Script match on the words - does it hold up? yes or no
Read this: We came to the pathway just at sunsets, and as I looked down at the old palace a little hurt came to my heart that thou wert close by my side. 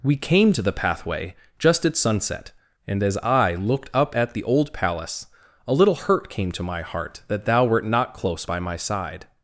no